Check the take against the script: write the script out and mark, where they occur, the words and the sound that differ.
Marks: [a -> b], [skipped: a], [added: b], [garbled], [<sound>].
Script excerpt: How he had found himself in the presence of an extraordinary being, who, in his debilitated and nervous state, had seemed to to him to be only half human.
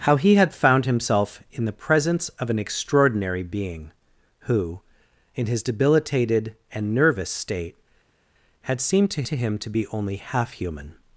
How he had found himself in the presence of an extraordinary being, who, in his debilitated and nervous state, had seemed to to him to be only half human.